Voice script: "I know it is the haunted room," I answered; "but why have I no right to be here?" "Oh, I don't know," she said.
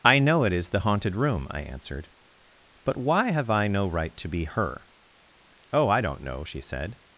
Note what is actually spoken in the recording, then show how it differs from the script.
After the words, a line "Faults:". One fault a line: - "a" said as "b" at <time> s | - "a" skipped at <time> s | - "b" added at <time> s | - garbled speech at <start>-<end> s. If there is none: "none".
"I know it is the haunted room," I answered; "but why have I no right to be her?" "Oh, I don't know," she said.
Faults:
- "here" said as "her" at 4.5 s